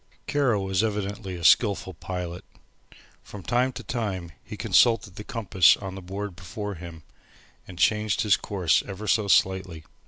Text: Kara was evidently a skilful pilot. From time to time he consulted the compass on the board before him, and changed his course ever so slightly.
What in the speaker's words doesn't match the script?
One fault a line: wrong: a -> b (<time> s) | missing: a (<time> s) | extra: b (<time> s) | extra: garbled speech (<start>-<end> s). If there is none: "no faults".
no faults